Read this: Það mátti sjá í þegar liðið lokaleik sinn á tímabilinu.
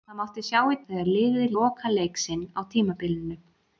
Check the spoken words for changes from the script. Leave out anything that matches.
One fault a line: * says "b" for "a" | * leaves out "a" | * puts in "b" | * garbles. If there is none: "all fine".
all fine